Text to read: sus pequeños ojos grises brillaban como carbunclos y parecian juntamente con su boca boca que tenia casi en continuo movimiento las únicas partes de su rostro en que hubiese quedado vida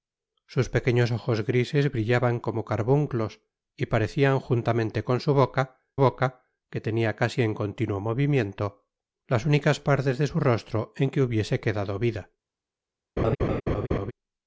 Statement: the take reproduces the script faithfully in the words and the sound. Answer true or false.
false